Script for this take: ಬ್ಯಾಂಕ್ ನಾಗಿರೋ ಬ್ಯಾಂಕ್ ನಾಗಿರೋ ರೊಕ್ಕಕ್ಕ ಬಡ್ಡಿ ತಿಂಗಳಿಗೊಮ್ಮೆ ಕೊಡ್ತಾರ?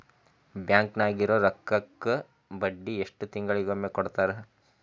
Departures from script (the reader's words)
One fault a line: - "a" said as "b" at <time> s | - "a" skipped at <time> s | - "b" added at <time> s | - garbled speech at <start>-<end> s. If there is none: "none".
- "ಬ್ಯಾಂಕ್ ನಾಗಿರೋ" skipped at 1.4 s
- "ಎಷ್ಟು" added at 3.0 s